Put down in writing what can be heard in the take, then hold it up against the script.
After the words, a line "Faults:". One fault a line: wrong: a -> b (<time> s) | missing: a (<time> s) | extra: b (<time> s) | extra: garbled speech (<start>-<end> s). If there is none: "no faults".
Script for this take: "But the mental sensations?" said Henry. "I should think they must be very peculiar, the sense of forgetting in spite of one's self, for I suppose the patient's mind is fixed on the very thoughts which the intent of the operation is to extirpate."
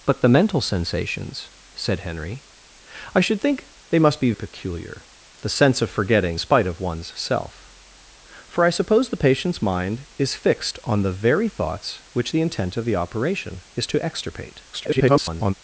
"But the mental sensations?" said Henry. "I should think they must be peculiar, the sense of forgetting spite of one's self, for I suppose the patient's mind is fixed on the very thoughts which the intent of the operation is to extirpate." [garbled]
Faults:
missing: very (4.3 s)
missing: in (6.4 s)
extra: garbled speech (14.7-15.5 s)